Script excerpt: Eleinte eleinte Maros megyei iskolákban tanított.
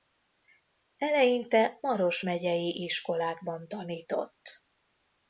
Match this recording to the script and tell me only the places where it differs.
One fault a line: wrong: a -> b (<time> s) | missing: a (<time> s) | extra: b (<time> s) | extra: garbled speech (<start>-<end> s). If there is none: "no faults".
missing: eleinte (1.8 s)